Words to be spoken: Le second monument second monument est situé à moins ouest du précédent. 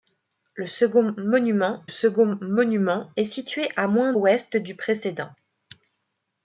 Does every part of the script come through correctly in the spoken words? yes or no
yes